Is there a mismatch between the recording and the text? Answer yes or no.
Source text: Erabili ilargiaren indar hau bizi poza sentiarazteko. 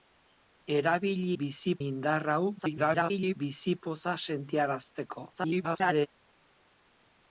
yes